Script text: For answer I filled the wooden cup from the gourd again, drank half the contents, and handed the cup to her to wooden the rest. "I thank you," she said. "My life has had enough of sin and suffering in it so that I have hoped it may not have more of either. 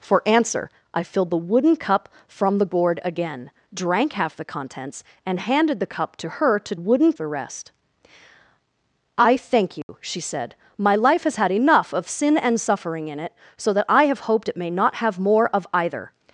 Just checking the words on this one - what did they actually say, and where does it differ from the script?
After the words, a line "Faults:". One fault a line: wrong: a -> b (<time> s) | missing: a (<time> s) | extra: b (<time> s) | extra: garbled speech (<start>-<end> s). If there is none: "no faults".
For answer I filled the wooden cup from the gourd again, drank half the contents, and handed the cup to her to wooden the rest. "I thank you," she said. "My life has had enough of sin and suffering in it so that I have hoped it may not have more of either.
Faults:
no faults